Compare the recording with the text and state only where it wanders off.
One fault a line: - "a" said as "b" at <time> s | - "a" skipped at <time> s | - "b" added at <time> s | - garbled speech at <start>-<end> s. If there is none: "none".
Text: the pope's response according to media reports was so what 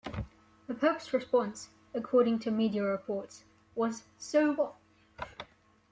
none